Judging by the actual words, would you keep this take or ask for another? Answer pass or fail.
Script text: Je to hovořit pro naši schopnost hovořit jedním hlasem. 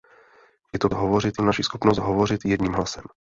pass